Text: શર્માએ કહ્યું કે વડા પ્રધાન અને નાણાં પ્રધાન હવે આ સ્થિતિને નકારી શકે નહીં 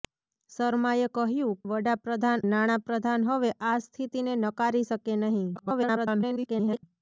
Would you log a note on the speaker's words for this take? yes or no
yes